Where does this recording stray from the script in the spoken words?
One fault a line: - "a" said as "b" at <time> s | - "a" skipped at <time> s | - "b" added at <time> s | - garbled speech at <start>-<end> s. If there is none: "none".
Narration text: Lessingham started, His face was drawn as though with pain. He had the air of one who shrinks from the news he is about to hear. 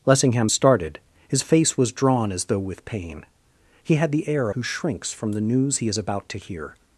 - "of one" skipped at 4.5 s